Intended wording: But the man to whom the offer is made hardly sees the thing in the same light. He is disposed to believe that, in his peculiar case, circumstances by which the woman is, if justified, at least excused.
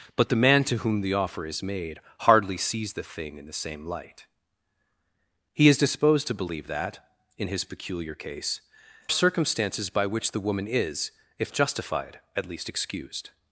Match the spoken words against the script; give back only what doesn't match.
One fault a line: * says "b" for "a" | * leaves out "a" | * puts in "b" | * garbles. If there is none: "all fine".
all fine